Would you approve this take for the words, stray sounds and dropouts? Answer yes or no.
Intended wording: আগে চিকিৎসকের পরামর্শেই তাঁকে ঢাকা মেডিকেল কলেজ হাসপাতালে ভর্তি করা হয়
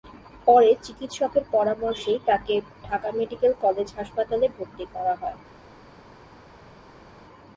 no